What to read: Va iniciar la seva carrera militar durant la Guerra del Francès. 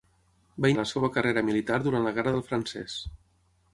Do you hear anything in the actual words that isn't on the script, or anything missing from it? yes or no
yes